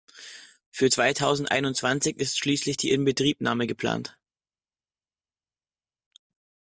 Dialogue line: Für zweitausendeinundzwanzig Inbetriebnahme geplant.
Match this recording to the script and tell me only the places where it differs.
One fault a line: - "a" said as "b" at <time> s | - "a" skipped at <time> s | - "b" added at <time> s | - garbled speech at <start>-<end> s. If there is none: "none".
- "ist schließlich die" added at 2.2 s